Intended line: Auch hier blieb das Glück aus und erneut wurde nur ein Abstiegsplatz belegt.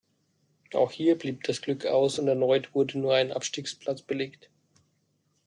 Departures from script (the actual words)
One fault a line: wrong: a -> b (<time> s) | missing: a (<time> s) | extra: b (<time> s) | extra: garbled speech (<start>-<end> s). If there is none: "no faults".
no faults